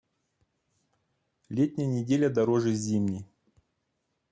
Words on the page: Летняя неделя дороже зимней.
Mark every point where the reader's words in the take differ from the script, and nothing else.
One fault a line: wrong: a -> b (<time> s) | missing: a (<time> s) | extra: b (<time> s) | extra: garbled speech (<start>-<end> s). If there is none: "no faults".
no faults